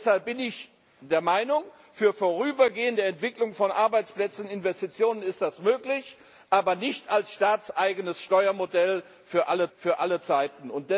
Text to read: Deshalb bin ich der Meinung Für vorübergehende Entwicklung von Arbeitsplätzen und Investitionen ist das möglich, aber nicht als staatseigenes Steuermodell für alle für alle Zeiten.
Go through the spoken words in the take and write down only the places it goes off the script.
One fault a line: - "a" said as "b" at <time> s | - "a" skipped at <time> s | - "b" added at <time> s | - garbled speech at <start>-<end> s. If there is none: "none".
none